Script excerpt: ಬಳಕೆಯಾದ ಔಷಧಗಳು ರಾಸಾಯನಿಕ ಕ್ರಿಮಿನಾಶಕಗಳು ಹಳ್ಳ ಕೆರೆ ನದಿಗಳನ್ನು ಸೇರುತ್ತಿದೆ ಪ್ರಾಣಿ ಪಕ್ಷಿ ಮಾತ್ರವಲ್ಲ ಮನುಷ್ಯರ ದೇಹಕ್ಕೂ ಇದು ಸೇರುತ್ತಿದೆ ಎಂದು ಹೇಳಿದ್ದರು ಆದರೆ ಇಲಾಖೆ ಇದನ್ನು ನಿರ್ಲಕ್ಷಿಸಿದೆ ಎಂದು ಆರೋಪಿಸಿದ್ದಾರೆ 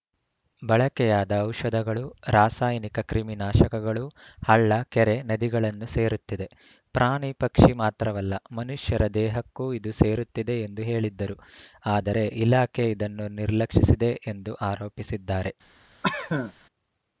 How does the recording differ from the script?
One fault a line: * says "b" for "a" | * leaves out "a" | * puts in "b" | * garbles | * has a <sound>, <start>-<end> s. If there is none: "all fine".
* has a cough, 16.0-16.5 s